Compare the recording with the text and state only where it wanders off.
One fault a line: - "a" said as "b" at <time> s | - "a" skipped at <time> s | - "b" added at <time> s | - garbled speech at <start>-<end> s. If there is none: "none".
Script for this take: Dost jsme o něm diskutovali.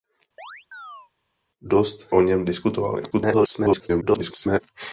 - "jsme" skipped at 2.1 s
- garbled speech at 3.1-4.6 s